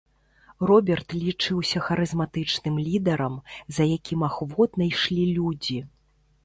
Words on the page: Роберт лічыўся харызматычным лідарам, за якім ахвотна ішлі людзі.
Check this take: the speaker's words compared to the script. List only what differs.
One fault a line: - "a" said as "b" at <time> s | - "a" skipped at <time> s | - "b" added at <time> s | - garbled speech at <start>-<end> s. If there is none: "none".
none